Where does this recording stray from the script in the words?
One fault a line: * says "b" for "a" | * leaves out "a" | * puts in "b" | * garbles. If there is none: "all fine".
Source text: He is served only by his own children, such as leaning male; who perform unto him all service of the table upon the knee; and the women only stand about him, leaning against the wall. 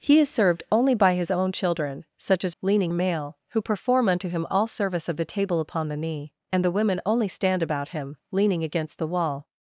all fine